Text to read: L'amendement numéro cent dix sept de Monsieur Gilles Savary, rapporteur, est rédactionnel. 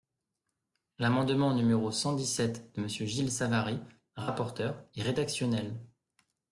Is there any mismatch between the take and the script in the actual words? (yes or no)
no